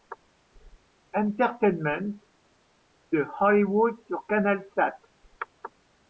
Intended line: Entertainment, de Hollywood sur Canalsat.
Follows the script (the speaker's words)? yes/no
yes